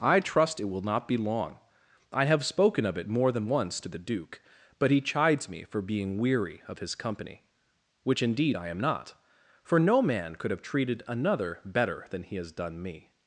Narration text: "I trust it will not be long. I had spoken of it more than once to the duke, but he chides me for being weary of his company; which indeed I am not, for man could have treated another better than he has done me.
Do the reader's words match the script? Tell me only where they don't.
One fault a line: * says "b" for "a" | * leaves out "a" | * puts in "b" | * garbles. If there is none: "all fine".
* says "have" for "had"
* puts in "no"